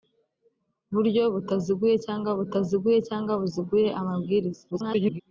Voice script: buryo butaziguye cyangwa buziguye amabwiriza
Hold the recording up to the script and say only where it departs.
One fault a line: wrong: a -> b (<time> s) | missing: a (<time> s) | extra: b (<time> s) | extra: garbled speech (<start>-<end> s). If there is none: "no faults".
extra: butaziguye cyangwa (2.4 s)
extra: garbled speech (4.7-5.2 s)